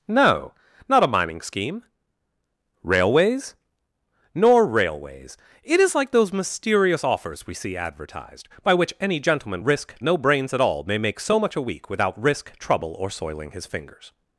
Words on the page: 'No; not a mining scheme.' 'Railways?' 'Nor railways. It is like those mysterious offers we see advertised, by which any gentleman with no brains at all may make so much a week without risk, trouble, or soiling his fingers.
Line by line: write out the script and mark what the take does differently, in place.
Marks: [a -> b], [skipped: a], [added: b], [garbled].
'No; not a mining scheme.' 'Railways?' 'Nor railways. It is like those mysterious offers we see advertised, by which any gentleman [with -> risk] no brains at all may make so much a week without risk, trouble, or soiling his fingers.